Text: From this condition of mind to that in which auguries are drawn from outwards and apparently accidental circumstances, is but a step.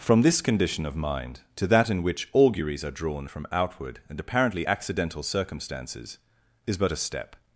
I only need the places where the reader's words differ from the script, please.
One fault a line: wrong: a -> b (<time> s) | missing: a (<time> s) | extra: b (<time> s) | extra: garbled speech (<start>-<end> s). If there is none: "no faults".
wrong: outwards -> outward (3.5 s)